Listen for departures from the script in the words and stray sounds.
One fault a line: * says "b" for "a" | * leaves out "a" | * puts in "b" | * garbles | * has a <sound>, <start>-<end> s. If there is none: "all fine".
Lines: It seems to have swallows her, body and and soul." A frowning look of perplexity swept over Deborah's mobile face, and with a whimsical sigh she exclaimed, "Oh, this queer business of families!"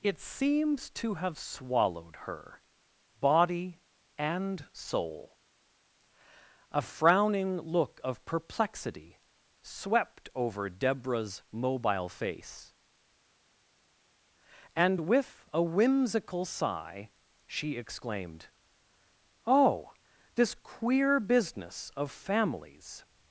* says "swallowed" for "swallows"
* leaves out "and"